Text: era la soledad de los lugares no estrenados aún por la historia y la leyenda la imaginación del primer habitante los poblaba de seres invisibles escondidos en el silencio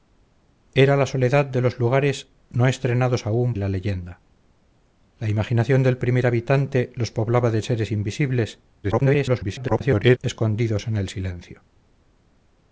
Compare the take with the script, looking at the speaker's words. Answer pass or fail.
fail